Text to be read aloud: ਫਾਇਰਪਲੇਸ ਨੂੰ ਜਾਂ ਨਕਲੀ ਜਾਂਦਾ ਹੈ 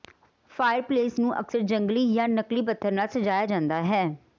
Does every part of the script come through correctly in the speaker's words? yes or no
no